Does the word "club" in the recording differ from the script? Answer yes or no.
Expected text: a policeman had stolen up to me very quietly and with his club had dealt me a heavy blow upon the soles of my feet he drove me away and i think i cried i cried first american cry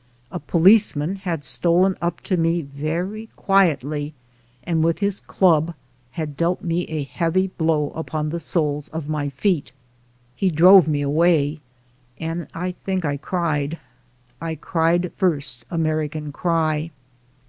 no